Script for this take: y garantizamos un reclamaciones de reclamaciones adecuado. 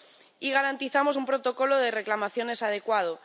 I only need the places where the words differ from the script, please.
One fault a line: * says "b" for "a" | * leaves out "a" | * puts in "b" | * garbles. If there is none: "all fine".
* says "protocolo" for "reclamaciones"